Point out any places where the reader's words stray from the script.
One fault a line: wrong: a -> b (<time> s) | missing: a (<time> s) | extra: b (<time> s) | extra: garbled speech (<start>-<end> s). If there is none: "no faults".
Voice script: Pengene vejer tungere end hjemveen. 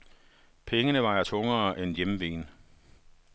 no faults